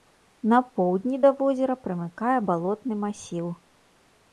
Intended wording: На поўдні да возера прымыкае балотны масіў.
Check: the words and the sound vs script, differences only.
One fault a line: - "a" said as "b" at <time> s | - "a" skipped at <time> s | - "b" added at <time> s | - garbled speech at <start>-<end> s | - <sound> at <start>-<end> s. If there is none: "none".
none